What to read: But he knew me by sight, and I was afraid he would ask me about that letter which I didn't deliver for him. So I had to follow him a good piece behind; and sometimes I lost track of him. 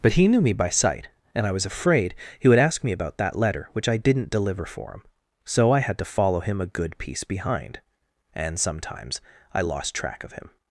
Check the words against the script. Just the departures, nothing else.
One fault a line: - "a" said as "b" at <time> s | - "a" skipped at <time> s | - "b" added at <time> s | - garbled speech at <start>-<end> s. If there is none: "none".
none